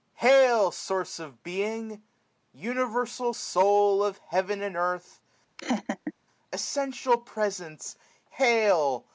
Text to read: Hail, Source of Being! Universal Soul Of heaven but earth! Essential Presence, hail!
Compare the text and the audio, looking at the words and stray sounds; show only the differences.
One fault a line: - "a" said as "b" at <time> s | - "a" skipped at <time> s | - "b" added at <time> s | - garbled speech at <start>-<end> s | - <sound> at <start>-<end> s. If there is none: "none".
- "but" said as "and" at 4.6 s
- laugh at 5.6-6.1 s